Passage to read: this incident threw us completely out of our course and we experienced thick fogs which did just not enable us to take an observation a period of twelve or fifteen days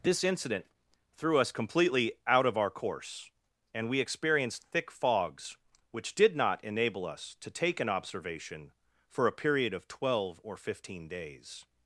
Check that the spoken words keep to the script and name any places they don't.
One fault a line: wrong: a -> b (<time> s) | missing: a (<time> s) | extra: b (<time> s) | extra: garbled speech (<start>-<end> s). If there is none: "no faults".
missing: just (6.3 s)
extra: for (9.1 s)